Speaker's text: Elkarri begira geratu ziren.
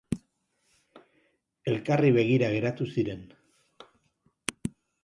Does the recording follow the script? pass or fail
pass